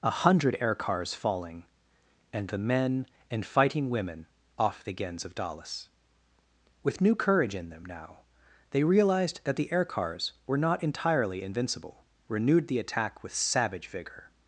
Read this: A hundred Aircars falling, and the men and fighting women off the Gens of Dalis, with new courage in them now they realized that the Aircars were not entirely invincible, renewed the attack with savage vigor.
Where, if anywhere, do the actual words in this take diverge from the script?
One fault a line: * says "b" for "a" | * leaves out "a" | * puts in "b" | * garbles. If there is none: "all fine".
all fine